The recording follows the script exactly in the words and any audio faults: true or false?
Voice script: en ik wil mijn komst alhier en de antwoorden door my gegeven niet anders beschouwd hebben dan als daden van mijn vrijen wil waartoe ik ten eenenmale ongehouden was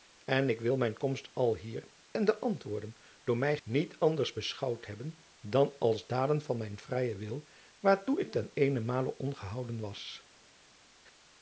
false